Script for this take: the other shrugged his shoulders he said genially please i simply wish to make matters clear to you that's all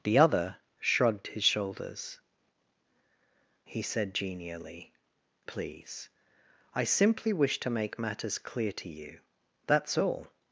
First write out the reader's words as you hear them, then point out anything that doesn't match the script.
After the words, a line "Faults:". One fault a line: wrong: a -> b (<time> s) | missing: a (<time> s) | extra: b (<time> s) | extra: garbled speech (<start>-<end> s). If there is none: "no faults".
the other shrugged his shoulders he said genially please i simply wish to make matters clear to you that's all
Faults:
no faults